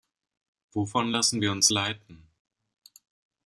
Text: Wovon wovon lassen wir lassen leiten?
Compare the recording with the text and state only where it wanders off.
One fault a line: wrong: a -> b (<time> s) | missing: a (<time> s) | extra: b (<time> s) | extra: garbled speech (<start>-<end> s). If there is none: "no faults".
missing: wovon (1.1 s)
wrong: lassen -> uns (1.5 s)